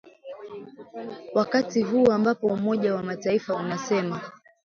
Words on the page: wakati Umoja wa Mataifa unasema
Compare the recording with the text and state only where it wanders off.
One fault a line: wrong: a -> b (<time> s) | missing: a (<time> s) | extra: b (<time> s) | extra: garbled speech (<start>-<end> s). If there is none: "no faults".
extra: huu ambapo (1.8 s)